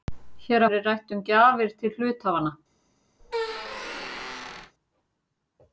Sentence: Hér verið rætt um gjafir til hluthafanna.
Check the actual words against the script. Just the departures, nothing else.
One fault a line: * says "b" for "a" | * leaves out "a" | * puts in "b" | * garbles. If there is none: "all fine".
all fine